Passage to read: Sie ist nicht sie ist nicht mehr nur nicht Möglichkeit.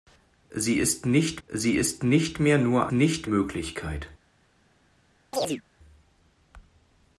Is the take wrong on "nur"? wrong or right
right